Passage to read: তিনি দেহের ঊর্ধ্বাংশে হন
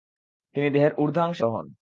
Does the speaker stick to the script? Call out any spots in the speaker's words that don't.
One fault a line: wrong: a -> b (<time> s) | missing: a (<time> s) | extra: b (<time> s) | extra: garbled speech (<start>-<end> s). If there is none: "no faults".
no faults